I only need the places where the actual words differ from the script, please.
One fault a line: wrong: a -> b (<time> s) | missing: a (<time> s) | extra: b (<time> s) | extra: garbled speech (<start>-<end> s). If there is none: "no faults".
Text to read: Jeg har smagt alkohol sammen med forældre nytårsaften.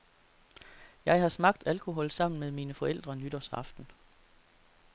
extra: mine (2.5 s)